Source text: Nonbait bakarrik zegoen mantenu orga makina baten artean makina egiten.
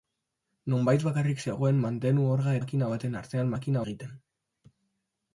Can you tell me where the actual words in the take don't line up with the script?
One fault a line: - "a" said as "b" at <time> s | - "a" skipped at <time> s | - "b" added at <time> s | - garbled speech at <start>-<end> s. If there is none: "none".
none